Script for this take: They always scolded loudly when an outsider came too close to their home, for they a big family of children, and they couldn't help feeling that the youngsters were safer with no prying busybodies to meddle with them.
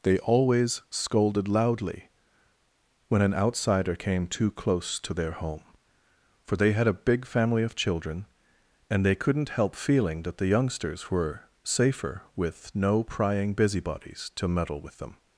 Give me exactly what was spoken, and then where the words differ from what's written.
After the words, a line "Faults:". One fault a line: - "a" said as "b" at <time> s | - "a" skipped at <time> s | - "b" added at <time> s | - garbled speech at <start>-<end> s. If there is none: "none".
They always scolded loudly when an outsider came too close to their home, for they had a big family of children, and they couldn't help feeling that the youngsters were safer with no prying busybodies to meddle with them.
Faults:
- "had" added at 6.7 s